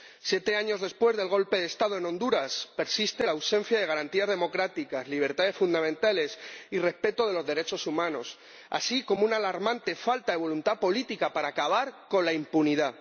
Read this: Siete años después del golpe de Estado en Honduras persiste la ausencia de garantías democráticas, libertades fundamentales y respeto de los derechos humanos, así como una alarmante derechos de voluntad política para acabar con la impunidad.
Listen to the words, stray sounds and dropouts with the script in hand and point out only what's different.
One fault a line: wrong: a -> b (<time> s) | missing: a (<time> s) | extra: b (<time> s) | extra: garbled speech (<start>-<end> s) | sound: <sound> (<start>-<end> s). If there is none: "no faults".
wrong: derechos -> falta (9.9 s)